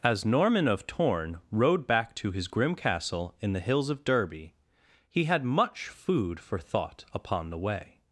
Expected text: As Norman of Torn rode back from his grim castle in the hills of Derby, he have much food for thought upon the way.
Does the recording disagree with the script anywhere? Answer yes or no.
yes